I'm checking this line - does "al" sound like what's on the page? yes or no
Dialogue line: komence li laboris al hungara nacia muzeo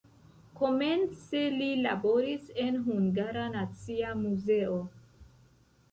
no